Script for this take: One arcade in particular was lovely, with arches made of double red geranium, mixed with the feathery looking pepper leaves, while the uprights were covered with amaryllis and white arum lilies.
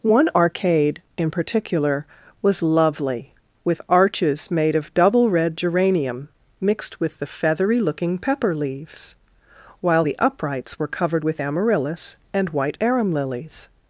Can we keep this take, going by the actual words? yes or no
yes